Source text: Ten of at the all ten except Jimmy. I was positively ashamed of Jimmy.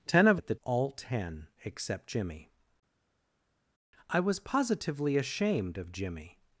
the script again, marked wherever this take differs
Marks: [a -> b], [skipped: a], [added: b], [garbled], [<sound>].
Ten of at the all ten except Jimmy. I was positively ashamed of Jimmy.